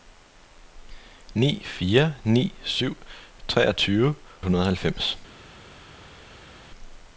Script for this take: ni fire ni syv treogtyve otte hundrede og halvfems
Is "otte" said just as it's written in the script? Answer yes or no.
no